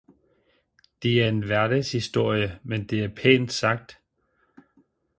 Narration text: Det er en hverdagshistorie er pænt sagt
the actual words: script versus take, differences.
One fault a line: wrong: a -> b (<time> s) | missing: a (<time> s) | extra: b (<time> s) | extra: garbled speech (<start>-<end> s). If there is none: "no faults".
extra: men det (2.6 s)